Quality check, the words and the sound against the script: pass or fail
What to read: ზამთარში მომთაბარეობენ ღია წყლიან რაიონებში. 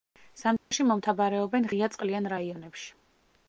fail